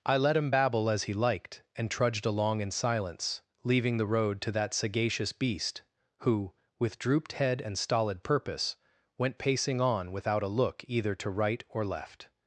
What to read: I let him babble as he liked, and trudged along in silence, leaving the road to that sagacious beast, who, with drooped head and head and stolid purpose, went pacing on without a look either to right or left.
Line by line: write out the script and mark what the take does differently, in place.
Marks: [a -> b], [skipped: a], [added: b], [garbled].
I let him babble as he liked, and trudged along in silence, leaving the road to that sagacious beast, who, with drooped head and [skipped: head and] stolid purpose, went pacing on without a look either to right or left.